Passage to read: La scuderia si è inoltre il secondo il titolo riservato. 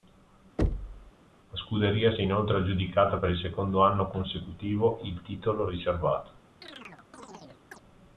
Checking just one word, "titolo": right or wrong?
right